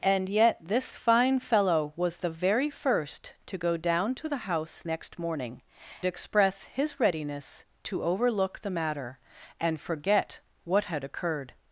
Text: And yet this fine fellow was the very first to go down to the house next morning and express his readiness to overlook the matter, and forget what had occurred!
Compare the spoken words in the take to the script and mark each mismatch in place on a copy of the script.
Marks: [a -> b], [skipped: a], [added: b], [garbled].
And yet this fine fellow was the very first to go down to the house next morning [skipped: and] express his readiness to overlook the matter, and forget what had occurred!